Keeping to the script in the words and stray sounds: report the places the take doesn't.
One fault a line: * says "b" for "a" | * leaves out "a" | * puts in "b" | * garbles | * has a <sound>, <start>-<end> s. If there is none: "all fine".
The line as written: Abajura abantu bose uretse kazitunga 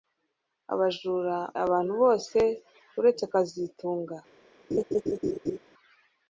* has a laugh, 4.7-5.6 s